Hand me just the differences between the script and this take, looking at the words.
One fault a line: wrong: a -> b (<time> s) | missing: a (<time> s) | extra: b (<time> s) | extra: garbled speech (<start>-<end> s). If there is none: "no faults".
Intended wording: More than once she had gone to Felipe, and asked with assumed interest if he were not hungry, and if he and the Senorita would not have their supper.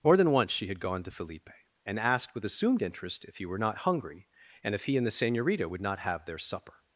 no faults